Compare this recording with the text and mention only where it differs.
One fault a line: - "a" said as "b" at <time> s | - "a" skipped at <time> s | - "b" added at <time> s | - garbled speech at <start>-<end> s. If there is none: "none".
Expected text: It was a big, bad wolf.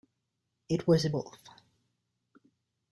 - "big bad" skipped at 1.1 s